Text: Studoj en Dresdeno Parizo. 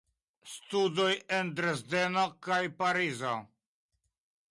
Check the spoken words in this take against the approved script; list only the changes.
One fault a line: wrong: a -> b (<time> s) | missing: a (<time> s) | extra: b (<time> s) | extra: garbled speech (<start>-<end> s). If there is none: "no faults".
extra: kaj (2.5 s)